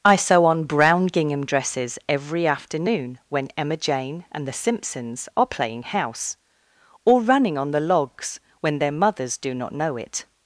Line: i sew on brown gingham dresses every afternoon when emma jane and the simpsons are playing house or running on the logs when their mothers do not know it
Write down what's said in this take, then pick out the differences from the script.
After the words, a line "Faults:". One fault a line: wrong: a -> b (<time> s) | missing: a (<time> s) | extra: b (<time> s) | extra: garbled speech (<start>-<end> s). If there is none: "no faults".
i sew on brown gingham dresses every afternoon when emma jane and the simpsons are playing house or running on the logs when their mothers do not know it
Faults:
no faults